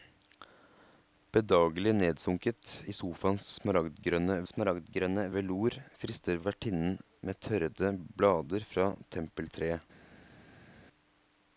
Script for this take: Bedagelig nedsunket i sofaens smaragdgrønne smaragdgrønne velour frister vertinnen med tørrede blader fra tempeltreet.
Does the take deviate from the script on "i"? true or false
false